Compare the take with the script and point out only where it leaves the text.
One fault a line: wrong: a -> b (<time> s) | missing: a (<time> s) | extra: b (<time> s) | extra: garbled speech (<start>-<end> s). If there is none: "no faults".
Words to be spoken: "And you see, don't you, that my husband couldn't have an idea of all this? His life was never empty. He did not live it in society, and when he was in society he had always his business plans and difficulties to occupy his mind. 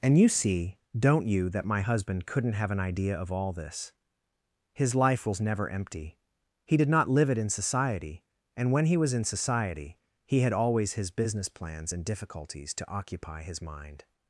no faults